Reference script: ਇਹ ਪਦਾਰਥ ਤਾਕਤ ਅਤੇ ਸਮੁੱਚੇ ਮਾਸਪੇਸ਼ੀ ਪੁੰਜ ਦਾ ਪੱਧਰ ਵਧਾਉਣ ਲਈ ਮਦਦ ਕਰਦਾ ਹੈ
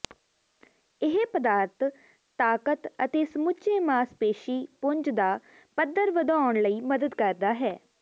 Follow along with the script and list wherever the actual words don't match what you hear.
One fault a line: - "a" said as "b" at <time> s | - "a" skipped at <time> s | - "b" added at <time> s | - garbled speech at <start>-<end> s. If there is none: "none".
none